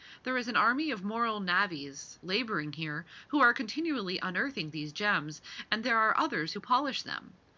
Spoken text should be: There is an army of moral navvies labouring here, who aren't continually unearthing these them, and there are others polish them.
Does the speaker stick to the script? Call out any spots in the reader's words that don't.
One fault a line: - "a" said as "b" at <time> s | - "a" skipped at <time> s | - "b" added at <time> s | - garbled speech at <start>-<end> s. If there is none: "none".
- "aren't" said as "are" at 3.4 s
- "them" said as "gems" at 4.9 s
- "who" added at 6.5 s